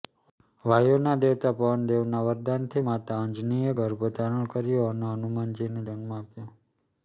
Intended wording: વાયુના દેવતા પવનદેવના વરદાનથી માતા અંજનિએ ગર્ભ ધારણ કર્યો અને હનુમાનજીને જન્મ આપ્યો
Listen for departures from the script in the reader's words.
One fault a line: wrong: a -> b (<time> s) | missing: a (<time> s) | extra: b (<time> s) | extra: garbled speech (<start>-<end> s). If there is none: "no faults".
no faults